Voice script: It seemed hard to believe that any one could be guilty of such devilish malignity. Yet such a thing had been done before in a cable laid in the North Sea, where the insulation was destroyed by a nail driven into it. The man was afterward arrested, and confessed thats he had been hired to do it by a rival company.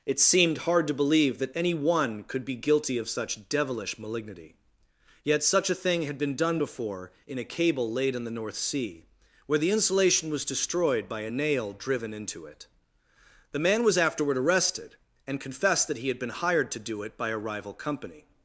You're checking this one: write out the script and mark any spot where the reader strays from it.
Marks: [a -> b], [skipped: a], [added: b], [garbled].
It seemed hard to believe that any one could be guilty of such devilish malignity. Yet such a thing had been done before in a cable laid in the North Sea, where the insulation was destroyed by a nail driven into it. The man was afterward arrested, and confessed [thats -> that] he had been hired to do it by a rival company.